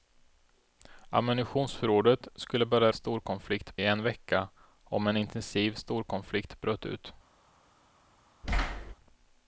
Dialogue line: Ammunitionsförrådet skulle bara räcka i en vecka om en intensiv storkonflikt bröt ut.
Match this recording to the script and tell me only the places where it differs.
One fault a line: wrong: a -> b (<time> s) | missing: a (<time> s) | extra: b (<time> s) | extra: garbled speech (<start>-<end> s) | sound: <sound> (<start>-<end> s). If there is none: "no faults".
wrong: räcka -> storkonflikt (2.9 s)
sound: thud (8.4-8.9 s)